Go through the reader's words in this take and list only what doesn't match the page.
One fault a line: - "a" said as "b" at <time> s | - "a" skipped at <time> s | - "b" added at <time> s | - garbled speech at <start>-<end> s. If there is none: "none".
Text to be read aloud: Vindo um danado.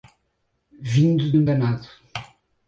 none